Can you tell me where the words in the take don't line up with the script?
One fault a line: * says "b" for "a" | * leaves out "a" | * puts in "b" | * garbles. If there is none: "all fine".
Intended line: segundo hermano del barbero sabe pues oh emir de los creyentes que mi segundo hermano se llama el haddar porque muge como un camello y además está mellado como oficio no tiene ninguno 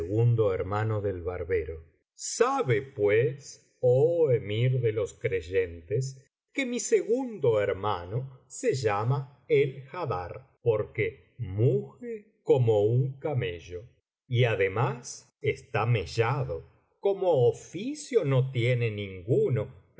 all fine